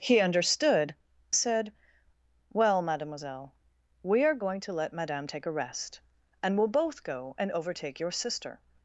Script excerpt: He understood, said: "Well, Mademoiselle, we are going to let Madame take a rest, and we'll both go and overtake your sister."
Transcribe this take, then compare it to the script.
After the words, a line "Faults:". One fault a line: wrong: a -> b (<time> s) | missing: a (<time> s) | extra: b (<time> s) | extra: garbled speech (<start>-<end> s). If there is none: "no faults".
He understood, said: "Well, Mademoiselle, we are going to let Madame take a rest, and we'll both go and overtake your sister."
Faults:
no faults